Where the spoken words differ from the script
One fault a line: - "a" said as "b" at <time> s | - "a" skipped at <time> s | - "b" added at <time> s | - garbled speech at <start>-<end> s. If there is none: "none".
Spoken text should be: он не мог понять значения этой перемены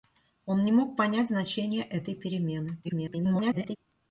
- garbled speech at 2.8-3.8 s